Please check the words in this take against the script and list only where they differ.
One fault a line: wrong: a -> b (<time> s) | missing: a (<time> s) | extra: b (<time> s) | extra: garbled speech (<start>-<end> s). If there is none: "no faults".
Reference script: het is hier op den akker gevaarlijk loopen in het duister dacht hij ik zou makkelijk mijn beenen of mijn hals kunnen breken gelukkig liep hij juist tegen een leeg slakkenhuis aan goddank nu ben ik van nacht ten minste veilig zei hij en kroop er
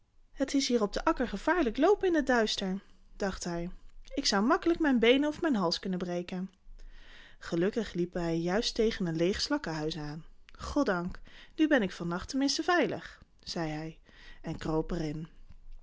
no faults